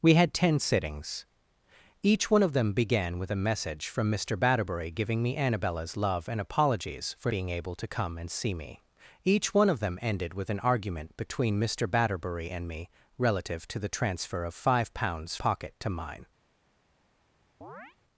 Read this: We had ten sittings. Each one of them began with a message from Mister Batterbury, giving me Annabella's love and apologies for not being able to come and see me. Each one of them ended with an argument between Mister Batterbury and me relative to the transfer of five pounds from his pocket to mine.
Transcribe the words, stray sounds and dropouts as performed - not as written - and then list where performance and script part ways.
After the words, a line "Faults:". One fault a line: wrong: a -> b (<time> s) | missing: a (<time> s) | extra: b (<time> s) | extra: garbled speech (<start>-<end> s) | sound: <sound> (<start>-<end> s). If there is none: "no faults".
We had ten sittings. Each one of them began with a message from Mister Batterbury, giving me Annabella's love and apologies for being able to come and see me. Each one of them ended with an argument between Mister Batterbury and me relative to the transfer of five pounds pocket to mine.
Faults:
missing: not (7.3 s)
missing: from his (15.4 s)
sound: chirp (17.6-18.0 s)